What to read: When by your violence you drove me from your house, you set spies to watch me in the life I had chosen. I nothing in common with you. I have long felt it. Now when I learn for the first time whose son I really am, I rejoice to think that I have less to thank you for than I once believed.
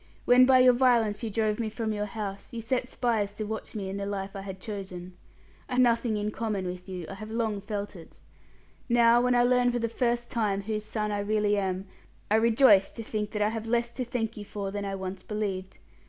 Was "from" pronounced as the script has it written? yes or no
yes